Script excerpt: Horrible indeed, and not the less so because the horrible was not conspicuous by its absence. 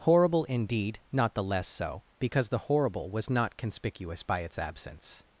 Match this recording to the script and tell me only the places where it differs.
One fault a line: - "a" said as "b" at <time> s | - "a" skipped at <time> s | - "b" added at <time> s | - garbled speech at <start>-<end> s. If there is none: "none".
- "and" skipped at 1.0 s